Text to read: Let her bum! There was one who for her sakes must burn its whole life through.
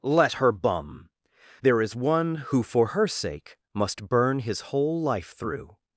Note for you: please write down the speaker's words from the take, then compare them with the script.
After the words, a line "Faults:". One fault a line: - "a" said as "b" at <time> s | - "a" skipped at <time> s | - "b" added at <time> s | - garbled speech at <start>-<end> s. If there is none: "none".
Let her bum! There is one who for her sake must burn his whole life through.
Faults:
- "was" said as "is" at 1.8 s
- "sakes" said as "sake" at 3.1 s
- "its" said as "his" at 4.4 s